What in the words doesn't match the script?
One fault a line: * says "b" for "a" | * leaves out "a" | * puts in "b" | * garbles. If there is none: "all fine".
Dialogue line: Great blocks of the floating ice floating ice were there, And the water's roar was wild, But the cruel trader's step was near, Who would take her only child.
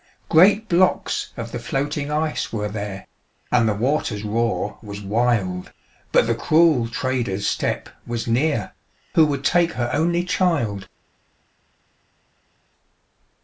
* leaves out "floating ice"